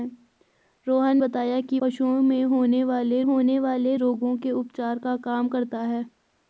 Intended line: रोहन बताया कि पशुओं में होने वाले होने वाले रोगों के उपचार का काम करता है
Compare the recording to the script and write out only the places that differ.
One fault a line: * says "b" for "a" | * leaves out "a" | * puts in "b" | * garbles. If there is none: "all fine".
all fine